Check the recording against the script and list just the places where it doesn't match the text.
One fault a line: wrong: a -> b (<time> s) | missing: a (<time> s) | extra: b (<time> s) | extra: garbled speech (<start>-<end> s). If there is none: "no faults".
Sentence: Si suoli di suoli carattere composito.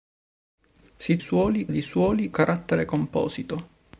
no faults